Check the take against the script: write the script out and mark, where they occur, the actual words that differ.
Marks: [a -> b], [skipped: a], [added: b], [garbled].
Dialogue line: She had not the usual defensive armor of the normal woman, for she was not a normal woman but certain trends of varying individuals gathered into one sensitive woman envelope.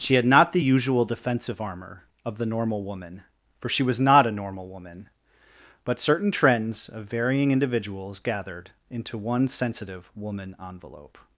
She had not the usual defensive armor of the normal woman, for she was not a normal woman but certain trends of varying individuals gathered into one sensitive woman envelope.